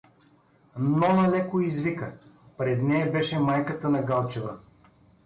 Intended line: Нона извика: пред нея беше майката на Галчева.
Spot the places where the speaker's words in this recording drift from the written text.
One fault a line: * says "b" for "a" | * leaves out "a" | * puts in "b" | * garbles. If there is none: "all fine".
* puts in "леко"